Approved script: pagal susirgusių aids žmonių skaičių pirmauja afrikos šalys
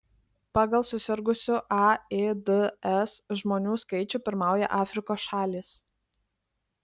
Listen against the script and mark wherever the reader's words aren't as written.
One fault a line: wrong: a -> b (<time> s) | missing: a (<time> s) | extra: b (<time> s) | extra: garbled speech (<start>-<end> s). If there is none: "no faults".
no faults